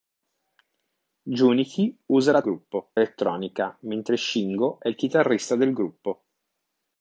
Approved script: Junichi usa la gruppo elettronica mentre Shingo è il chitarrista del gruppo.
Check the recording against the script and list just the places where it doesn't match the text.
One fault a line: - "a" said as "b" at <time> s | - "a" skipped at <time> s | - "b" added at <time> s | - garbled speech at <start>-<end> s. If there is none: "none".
none